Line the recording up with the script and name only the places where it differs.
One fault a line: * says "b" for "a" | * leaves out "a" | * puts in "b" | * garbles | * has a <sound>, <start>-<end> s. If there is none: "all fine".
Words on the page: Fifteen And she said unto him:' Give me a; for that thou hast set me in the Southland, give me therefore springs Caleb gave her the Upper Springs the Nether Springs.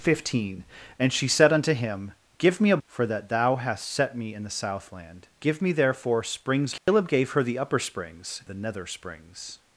* has a dropout, 6.8-6.9 s